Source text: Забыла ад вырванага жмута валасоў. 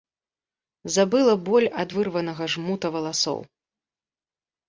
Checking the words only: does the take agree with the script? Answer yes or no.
no